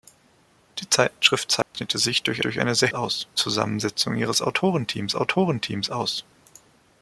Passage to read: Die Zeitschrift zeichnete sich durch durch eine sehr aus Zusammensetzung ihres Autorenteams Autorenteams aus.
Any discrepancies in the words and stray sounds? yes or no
yes